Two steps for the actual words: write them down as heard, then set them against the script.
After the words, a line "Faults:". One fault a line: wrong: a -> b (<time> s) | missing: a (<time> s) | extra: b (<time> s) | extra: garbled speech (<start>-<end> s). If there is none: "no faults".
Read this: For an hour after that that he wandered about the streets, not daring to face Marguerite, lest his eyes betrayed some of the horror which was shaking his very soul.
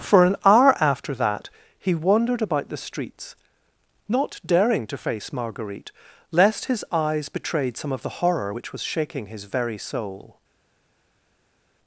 For an hour after that he wandered about the streets, not daring to face Marguerite, lest his eyes betrayed some of the horror which was shaking his very soul.
Faults:
missing: that (1.5 s)